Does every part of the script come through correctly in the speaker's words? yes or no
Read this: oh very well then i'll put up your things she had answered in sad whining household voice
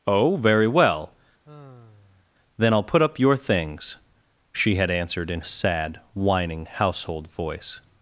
yes